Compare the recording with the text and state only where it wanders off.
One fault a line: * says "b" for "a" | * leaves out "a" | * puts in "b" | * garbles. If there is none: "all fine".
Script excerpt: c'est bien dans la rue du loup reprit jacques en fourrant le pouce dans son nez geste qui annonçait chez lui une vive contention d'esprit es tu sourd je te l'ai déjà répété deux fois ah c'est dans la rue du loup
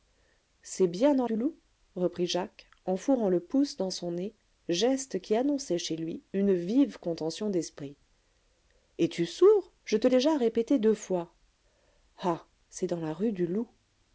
* leaves out "la rue"
* leaves out "l'ai"